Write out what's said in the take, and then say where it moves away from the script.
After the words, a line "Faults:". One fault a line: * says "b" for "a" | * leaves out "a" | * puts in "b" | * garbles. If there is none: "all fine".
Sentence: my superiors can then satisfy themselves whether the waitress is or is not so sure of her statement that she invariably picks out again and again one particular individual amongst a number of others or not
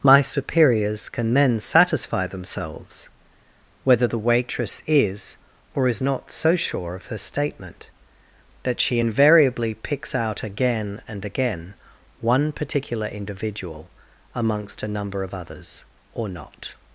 my superiors can then satisfy themselves whether the waitress is or is not so sure of her statement that she invariably picks out again and again one particular individual amongst a number of others or not
Faults:
all fine